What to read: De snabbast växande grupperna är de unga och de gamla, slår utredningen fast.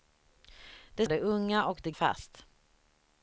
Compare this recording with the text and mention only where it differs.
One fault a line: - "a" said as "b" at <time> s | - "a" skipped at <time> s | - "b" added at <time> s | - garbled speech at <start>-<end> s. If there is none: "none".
- "snabbast växande grupperna" skipped at 1.1 s
- "gamla slår utredningen" skipped at 1.9 s